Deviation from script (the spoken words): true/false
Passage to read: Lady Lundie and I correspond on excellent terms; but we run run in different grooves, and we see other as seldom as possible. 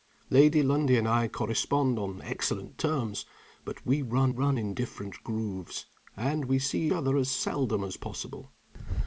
false